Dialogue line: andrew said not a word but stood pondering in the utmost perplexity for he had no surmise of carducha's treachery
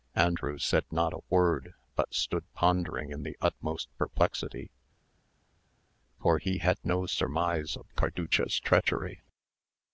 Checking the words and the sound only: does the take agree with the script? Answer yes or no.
yes